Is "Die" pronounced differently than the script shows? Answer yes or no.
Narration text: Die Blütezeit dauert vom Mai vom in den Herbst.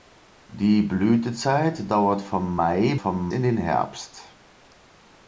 no